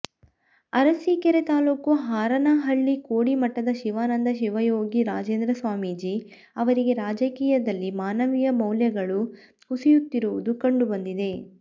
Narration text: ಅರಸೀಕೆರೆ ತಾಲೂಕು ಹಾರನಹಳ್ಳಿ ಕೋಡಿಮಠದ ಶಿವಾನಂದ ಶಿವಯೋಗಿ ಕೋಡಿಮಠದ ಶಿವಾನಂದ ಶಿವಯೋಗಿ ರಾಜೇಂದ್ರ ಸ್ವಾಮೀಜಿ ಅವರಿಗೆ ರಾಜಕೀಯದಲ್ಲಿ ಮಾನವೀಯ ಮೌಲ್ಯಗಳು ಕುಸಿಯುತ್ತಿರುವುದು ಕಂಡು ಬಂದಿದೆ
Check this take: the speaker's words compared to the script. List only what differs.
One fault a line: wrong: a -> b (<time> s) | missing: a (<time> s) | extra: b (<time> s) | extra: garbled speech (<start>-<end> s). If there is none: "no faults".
missing: ಕೋಡಿಮಠದ ಶಿವಾನಂದ ಶಿವಯೋಗಿ (5.0 s)